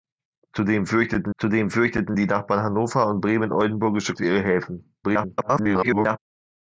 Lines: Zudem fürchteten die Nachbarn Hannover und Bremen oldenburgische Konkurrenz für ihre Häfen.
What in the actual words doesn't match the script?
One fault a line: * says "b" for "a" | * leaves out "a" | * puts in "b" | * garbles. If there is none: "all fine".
* puts in "zudem fürchteten"
* leaves out "Konkurrenz"
* garbles